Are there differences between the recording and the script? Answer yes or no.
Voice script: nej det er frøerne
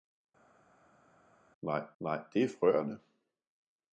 yes